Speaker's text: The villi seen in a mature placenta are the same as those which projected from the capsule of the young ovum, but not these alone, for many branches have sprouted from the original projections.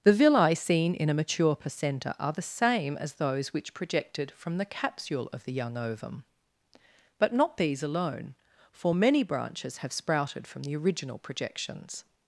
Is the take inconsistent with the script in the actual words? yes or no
no